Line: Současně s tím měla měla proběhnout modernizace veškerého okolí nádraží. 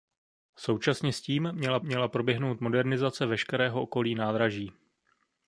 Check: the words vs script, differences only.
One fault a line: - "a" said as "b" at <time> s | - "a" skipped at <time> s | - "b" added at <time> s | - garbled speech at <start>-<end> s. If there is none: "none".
none